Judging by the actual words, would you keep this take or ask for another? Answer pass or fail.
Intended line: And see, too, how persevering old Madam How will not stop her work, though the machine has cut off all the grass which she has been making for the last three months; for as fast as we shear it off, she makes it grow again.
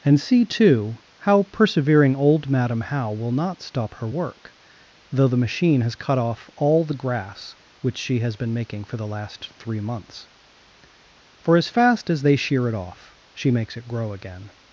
fail